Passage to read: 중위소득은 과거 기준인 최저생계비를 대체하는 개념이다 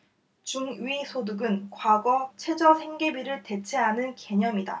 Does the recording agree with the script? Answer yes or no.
no